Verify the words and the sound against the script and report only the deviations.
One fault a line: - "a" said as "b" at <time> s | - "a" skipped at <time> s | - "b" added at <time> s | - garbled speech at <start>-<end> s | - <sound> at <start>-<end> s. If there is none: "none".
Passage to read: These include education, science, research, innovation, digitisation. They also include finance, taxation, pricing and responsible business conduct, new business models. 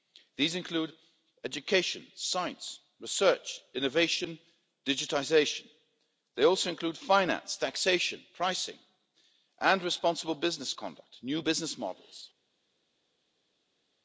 none